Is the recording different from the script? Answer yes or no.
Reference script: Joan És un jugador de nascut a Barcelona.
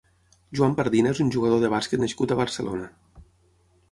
yes